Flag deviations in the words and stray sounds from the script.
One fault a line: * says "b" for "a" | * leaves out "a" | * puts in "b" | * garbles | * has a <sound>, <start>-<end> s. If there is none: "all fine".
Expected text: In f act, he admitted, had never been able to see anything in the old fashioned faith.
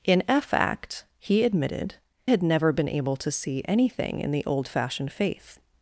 all fine